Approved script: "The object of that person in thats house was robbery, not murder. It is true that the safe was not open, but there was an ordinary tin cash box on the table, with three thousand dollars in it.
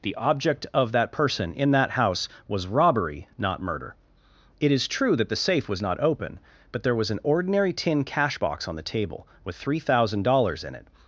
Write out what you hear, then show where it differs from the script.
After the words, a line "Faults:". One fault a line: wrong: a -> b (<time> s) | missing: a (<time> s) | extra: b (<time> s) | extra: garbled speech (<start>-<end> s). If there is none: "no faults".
"The object of that person in that house was robbery, not murder. It is true that the safe was not open, but there was an ordinary tin cash box on the table, with three thousand dollars in it.
Faults:
wrong: thats -> that (1.7 s)